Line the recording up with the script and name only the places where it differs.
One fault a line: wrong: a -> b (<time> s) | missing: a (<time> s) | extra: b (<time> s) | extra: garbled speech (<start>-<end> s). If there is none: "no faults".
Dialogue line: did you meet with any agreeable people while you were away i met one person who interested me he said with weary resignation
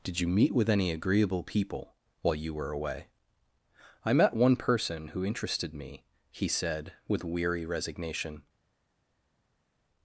no faults